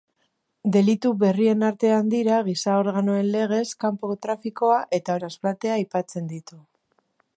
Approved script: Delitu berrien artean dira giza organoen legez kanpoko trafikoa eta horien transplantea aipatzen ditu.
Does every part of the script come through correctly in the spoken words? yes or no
no